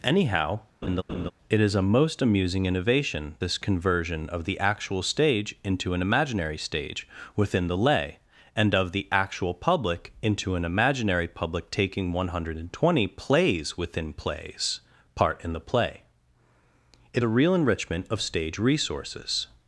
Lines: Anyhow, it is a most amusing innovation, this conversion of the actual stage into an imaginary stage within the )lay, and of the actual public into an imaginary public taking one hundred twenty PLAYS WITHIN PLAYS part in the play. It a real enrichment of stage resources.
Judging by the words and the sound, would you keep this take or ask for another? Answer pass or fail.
fail